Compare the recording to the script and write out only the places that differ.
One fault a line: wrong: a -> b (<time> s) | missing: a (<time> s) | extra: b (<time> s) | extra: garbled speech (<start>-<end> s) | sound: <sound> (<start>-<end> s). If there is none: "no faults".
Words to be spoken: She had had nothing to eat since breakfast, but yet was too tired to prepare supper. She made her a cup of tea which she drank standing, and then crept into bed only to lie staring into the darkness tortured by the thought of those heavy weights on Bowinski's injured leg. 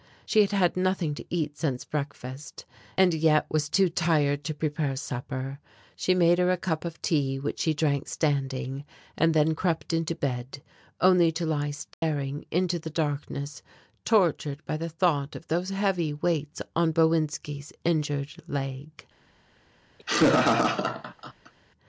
wrong: but -> and (3.0 s)
sound: dropout (11.9-12.0 s)
sound: laugh (20.0-21.5 s)